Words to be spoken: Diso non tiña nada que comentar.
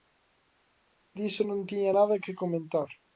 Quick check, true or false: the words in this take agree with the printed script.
true